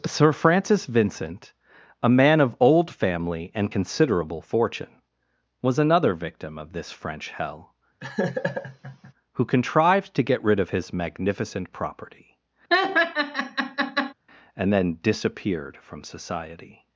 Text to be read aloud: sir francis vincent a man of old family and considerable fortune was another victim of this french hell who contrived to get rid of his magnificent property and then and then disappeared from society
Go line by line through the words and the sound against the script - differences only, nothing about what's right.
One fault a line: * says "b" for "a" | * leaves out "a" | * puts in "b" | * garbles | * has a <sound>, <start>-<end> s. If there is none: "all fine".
* has a laugh, 8.0-9.1 s
* has a laugh, 12.7-14.1 s
* leaves out "and then"